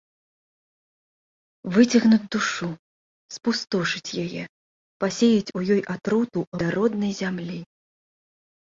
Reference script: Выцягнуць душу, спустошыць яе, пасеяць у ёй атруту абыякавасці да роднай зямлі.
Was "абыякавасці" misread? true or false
true